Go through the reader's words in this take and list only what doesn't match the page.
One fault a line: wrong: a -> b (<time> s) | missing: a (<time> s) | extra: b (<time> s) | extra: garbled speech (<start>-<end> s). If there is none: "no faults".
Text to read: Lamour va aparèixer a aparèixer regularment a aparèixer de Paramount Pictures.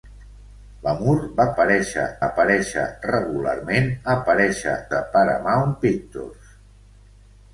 no faults